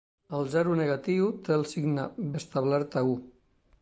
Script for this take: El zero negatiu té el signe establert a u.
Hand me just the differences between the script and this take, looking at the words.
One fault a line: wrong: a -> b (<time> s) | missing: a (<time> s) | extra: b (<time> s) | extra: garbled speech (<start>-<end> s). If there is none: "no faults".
no faults